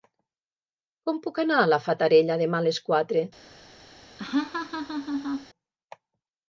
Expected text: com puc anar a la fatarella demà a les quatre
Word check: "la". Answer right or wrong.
right